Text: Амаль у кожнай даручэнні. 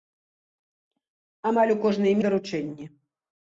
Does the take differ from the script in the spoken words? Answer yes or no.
no